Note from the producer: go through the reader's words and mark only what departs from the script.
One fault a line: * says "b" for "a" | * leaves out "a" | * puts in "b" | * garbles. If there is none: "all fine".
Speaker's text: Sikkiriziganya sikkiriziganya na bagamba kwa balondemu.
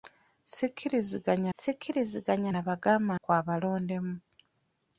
all fine